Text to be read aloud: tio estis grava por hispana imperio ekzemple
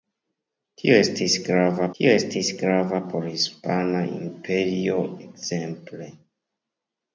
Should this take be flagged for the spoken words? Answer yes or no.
yes